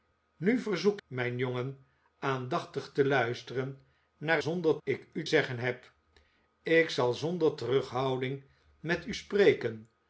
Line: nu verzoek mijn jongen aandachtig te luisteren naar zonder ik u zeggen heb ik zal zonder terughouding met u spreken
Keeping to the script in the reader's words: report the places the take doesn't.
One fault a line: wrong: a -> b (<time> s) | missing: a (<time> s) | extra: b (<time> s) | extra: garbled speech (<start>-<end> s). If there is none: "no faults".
no faults